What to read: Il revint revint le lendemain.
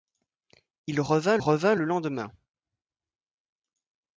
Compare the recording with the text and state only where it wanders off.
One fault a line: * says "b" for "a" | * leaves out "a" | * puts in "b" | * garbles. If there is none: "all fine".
all fine